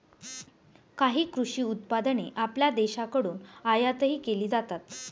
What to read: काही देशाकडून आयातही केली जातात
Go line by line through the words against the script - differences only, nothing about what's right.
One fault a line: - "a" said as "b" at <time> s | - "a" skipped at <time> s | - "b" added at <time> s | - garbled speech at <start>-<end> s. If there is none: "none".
- "कृषी उत्पादने आपल्या" added at 1.2 s